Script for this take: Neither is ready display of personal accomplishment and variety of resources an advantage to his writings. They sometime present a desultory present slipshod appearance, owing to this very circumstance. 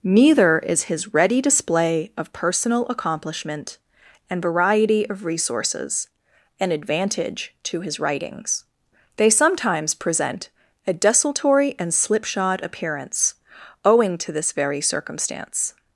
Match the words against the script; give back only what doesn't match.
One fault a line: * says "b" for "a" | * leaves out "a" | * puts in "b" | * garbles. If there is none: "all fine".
* puts in "his"
* says "sometimes" for "sometime"
* says "and" for "present"